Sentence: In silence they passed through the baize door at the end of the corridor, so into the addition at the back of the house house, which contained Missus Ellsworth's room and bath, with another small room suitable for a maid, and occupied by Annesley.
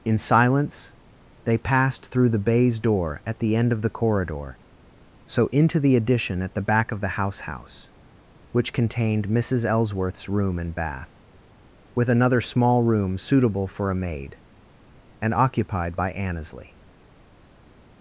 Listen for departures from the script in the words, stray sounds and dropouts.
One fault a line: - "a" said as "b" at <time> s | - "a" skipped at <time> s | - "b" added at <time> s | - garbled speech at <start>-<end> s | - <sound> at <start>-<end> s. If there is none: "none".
none